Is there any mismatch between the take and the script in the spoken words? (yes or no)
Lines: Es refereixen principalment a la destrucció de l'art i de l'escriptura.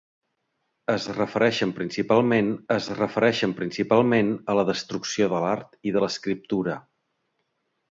yes